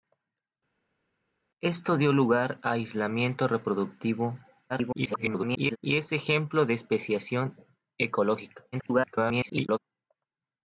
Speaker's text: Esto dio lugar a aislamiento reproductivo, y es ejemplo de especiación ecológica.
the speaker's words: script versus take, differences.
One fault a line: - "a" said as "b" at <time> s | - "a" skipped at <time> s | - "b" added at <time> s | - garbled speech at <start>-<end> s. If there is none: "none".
- garbled speech at 4.7-5.8 s
- garbled speech at 8.7-9.8 s